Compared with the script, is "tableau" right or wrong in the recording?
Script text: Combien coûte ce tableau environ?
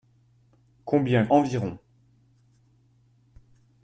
wrong